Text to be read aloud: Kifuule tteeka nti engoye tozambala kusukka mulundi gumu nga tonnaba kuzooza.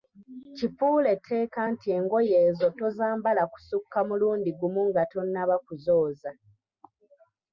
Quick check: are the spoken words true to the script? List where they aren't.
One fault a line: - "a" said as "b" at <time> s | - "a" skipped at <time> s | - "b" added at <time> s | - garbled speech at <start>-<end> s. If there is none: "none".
- "ezo" added at 2.5 s